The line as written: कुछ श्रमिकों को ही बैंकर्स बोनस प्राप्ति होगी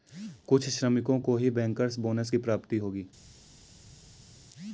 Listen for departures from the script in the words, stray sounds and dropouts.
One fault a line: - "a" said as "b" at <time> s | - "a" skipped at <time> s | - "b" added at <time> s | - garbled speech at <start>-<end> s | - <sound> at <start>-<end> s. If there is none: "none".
- "की" added at 2.3 s